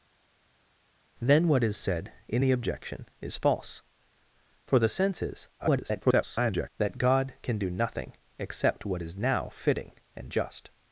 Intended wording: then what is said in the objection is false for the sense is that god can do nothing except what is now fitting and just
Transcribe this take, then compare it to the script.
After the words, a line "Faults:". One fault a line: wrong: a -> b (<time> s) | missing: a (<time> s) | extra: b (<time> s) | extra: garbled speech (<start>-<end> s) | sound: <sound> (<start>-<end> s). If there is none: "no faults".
then what is said in the objection is false for the sense is [garbled] that god can do nothing except what is now fitting and just
Faults:
extra: garbled speech (5.6-6.7 s)